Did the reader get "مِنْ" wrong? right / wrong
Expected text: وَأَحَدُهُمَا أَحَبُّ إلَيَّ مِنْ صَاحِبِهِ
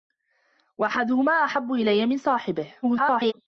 right